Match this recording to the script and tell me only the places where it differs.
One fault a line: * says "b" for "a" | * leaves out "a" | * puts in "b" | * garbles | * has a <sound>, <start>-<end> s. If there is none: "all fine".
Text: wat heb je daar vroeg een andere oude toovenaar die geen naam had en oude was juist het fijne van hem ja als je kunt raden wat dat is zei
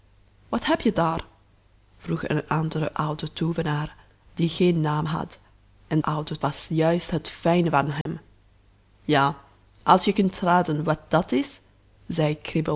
* has a dropout, 8.0-8.1 s